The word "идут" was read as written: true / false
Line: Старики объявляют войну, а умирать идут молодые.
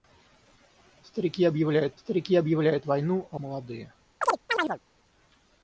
false